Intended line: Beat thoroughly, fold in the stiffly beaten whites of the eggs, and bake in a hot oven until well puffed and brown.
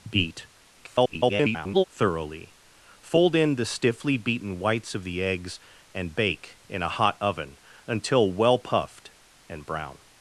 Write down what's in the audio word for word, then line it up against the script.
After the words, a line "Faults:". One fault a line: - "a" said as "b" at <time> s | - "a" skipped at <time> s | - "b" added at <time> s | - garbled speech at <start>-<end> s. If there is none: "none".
Beat [garbled] thoroughly, fold in the stiffly beaten whites of the eggs, and bake in a hot oven until well puffed and brown.
Faults:
- garbled speech at 0.8-1.8 s